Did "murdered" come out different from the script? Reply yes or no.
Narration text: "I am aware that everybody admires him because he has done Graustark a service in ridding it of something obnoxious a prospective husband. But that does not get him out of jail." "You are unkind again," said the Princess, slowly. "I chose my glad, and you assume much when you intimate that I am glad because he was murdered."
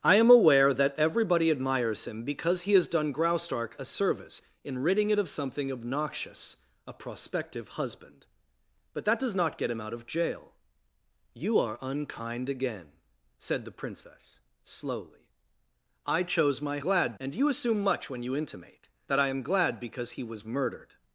no